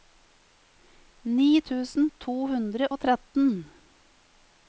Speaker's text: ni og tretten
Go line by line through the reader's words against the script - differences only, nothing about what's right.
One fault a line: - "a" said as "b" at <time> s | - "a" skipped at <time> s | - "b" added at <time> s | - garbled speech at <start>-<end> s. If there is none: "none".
- "tusen to hundre" added at 1.7 s